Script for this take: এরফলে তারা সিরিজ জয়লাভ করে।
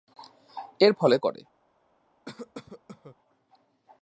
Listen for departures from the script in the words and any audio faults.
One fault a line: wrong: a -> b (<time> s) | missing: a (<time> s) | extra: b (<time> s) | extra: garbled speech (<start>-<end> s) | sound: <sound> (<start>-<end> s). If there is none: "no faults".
missing: তারা সিরিজ জয়লাভ (1.2 s)
sound: cough (2.3-3.2 s)